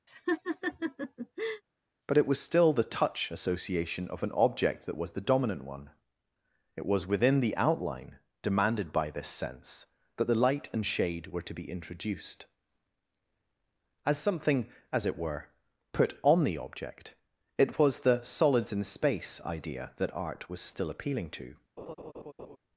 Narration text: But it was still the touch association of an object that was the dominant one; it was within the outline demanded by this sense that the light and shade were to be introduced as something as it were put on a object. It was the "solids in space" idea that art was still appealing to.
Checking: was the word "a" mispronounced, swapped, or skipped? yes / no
yes